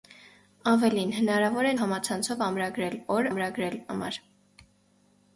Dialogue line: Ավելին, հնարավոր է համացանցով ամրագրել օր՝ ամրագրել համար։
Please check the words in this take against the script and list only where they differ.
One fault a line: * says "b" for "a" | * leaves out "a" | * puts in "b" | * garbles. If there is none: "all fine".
all fine